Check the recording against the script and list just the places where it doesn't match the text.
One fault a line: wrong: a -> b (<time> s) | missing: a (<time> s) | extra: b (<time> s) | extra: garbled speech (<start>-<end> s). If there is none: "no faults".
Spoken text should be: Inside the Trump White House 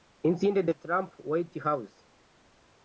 no faults